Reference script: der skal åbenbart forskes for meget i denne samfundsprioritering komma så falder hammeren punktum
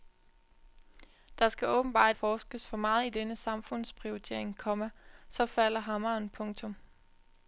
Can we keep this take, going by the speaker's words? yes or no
yes